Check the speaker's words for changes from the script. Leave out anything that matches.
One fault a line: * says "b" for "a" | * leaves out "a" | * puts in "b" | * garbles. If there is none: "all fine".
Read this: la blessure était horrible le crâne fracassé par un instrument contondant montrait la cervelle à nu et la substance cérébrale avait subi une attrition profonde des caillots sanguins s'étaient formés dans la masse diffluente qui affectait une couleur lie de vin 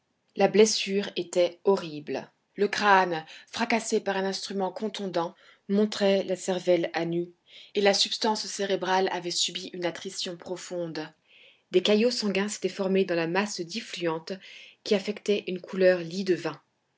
all fine